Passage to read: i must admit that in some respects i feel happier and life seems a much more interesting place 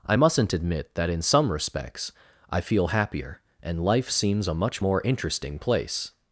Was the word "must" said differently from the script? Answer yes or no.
yes